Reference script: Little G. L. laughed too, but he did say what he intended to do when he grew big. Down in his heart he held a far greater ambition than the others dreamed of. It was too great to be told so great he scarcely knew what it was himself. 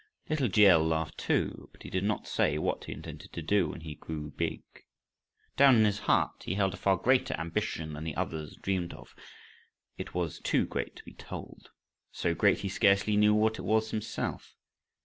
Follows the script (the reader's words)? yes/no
no